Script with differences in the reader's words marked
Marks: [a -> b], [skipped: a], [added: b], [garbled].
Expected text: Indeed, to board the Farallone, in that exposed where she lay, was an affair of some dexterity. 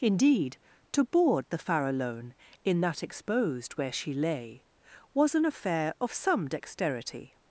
Indeed, to board the Farallone, in that exposed where she lay, was an affair of some dexterity.